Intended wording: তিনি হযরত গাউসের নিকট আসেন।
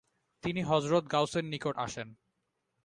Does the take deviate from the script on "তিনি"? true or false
false